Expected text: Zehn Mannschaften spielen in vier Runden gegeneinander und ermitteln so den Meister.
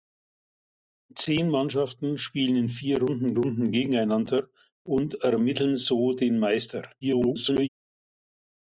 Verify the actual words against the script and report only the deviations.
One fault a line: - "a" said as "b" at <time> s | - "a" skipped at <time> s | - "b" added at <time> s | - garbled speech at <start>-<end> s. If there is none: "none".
- "Runden" added at 3.3 s
- garbled speech at 7.0-7.7 s